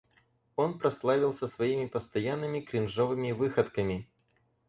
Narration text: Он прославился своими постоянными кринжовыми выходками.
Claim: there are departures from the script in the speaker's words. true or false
false